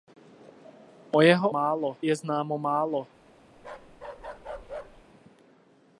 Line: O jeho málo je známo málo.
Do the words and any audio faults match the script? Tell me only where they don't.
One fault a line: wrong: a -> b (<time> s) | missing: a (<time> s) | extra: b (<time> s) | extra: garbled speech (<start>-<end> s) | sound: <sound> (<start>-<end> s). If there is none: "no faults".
sound: bark (3.6-5.1 s)